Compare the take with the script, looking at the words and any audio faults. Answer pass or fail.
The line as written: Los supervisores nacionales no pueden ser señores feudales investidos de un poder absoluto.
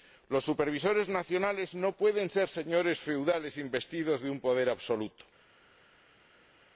pass